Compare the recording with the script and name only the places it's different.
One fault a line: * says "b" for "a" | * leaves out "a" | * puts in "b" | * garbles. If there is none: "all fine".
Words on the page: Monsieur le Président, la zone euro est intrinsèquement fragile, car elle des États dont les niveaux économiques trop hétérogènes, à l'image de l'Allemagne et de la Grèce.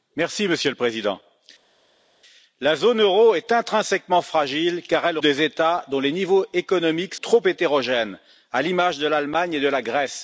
all fine